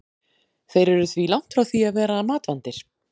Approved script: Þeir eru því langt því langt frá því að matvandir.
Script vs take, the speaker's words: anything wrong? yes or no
yes